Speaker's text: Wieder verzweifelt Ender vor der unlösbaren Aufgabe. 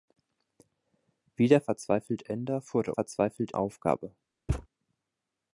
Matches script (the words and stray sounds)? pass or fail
fail